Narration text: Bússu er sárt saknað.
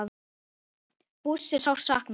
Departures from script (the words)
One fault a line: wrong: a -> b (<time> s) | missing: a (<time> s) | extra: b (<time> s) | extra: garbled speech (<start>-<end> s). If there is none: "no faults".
no faults